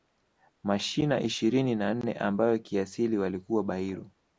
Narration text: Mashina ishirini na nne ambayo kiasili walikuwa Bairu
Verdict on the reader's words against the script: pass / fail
pass